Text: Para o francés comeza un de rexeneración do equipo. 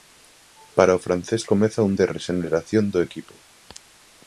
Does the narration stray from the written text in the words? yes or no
no